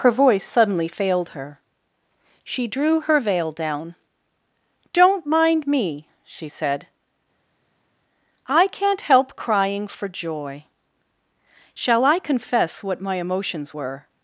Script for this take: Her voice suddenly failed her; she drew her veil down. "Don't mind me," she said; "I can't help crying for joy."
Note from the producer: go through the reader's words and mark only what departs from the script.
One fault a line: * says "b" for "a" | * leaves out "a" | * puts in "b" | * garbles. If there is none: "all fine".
* puts in "Shall I confess what my emotions were"